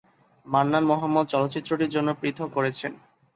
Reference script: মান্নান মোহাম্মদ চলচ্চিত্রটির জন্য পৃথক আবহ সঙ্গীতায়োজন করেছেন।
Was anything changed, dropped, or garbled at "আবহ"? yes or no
yes